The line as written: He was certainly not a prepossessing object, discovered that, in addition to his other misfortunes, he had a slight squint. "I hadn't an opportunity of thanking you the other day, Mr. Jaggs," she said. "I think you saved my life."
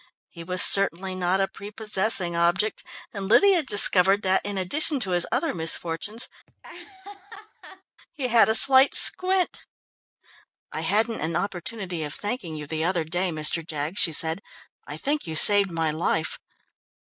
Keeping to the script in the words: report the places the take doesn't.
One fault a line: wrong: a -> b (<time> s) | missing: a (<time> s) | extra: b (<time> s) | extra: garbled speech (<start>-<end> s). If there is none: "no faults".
extra: and Lydia (3.1 s)